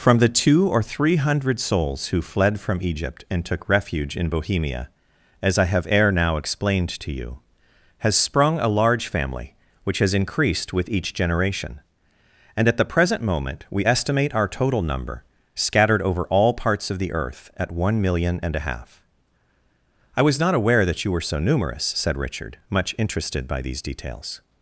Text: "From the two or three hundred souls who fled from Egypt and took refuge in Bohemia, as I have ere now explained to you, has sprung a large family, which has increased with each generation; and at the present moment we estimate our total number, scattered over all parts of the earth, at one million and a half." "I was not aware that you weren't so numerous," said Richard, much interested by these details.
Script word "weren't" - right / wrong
wrong